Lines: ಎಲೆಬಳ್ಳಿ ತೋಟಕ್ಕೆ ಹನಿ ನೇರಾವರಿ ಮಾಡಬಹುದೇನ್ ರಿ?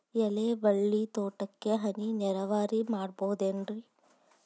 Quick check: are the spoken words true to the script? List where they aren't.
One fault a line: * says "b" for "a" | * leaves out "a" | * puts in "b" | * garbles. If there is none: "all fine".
all fine